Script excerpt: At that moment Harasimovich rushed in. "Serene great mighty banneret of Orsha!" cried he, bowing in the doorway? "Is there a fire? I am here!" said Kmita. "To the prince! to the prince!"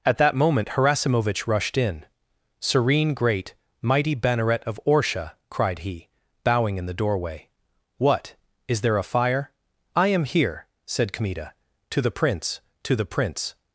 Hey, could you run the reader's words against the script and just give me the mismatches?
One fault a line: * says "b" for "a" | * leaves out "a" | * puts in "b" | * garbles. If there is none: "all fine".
* puts in "What"